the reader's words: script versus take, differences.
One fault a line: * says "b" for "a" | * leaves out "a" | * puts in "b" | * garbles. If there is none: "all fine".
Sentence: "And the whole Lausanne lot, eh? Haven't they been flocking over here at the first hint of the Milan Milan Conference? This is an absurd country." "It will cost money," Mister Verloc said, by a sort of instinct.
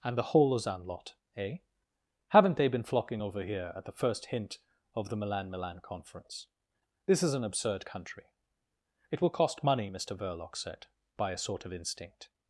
all fine